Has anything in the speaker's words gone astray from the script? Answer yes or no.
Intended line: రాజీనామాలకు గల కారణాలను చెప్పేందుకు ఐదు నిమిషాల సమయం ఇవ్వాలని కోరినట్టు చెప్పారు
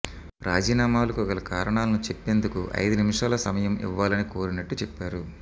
no